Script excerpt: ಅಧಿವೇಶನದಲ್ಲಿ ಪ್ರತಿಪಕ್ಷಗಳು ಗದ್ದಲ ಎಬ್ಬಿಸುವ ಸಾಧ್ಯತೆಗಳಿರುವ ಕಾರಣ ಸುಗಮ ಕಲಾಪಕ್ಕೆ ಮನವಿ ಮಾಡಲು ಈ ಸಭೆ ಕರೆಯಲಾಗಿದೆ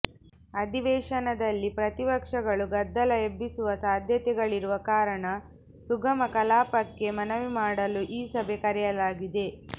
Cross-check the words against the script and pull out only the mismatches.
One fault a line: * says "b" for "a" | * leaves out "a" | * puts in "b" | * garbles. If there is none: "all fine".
all fine